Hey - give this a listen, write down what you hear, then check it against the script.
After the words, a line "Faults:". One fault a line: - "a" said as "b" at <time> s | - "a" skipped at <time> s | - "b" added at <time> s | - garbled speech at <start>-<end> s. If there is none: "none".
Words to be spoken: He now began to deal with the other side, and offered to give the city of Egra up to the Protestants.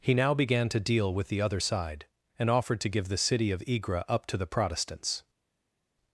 He now began to deal with the other side, and offered to give the city of Egra up to the Protestants.
Faults:
none